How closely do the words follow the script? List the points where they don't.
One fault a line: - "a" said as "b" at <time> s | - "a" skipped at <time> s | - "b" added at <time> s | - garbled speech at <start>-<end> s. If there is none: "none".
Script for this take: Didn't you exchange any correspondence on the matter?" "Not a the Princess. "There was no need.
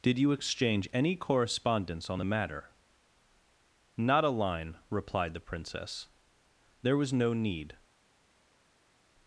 - "Didn't" said as "Did" at 0.0 s
- "line replied" added at 4.3 s